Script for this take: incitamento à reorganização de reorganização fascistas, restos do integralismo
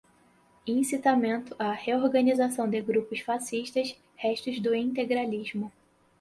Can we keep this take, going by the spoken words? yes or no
no